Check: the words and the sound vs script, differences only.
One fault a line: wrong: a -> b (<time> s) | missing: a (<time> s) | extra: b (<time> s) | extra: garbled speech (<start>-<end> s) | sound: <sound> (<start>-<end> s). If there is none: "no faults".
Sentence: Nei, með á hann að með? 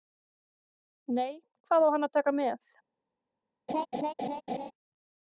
wrong: með -> hvað (1.7 s)
extra: taka (2.2 s)
sound: laugh (3.7-4.7 s)